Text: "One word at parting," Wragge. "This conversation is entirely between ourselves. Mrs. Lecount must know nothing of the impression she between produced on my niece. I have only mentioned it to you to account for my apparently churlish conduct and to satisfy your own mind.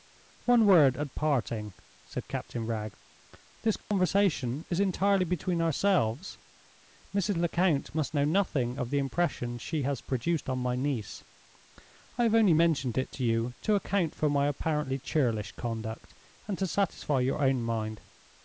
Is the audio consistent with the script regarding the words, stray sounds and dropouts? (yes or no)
no